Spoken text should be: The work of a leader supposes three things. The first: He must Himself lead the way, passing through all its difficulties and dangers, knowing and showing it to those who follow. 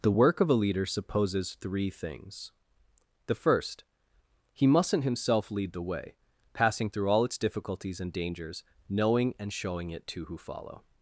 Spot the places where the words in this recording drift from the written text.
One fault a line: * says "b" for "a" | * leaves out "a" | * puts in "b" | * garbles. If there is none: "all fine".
* says "mustn't" for "must"
* leaves out "those"